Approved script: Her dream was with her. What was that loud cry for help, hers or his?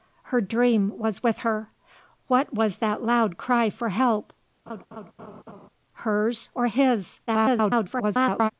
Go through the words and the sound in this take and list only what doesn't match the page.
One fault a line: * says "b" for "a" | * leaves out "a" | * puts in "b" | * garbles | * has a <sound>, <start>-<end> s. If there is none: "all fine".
* has a laugh, 4.7-5.7 s
* garbles